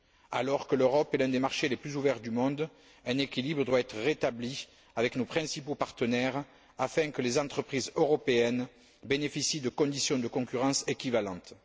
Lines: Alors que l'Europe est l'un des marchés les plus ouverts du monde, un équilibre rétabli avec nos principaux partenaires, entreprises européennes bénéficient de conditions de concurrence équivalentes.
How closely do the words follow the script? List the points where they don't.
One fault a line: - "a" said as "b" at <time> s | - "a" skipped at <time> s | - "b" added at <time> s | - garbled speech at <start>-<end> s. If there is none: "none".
- "doit être" added at 3.7 s
- "afin que les" added at 6.8 s